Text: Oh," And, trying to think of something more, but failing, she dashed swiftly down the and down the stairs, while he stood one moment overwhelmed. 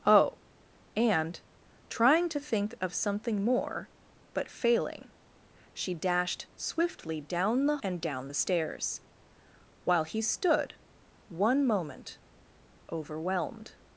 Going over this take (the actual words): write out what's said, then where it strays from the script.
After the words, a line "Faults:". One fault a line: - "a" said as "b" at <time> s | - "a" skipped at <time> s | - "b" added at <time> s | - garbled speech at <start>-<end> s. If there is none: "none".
Oh," And, trying to think of something more, but failing, she dashed swiftly down the and down the stairs, while he stood one moment overwhelmed.
Faults:
none